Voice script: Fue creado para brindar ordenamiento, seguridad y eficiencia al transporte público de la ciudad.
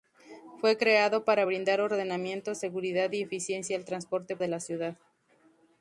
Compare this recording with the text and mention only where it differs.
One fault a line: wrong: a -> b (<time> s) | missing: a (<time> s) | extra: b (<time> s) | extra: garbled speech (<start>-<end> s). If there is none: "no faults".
missing: público (4.4 s)